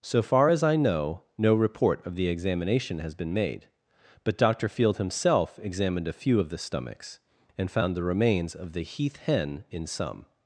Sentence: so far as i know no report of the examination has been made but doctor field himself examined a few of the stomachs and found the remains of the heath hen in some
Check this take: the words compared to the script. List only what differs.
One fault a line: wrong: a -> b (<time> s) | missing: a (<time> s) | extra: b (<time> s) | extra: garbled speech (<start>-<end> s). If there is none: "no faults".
no faults